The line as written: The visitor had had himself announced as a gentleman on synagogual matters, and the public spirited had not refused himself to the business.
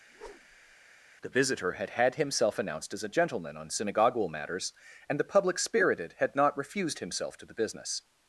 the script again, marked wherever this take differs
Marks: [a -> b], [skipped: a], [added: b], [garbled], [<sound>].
[whoosh] The visitor had had himself announced as a gentleman on synagogual matters, and the public spirited had not refused himself to the business.